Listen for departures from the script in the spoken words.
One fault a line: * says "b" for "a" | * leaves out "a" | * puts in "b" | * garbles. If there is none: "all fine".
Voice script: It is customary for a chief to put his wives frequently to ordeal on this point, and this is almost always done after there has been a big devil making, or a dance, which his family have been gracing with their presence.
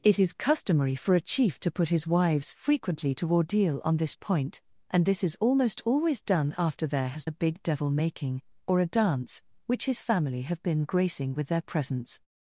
* leaves out "been"